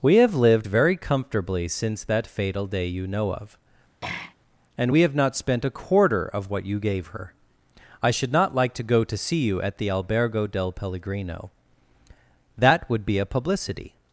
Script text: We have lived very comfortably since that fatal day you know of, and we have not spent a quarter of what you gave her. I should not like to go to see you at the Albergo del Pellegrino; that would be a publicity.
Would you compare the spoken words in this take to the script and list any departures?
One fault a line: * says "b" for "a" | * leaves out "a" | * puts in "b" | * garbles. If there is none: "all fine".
all fine